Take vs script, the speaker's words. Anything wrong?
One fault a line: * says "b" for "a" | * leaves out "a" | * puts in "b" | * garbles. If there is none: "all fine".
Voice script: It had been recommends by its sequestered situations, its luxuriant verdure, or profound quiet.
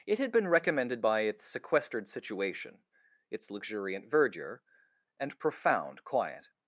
* says "recommended" for "recommends"
* says "situation" for "situations"
* says "and" for "or"